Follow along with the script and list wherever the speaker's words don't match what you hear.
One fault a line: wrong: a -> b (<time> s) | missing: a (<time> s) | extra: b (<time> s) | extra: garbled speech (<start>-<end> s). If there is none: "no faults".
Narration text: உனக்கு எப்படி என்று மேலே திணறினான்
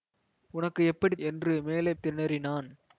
no faults